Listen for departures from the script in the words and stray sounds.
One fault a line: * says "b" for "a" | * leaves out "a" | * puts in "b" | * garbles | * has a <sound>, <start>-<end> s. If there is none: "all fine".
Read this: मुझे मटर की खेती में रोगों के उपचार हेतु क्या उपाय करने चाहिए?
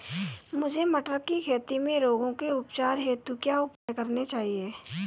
* has a dropout, 3.8-3.9 s